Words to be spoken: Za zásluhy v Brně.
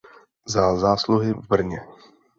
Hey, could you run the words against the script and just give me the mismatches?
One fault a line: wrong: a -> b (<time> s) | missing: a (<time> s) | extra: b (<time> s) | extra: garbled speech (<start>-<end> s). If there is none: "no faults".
no faults